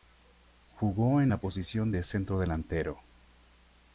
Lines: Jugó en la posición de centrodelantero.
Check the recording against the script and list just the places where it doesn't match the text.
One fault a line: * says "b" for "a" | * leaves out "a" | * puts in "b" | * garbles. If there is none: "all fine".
all fine